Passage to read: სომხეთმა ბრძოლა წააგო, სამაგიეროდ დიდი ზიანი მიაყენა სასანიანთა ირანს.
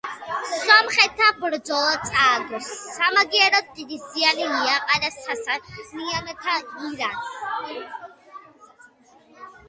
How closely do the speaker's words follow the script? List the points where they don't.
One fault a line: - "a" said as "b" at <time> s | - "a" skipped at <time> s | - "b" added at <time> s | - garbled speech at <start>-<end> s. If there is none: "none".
none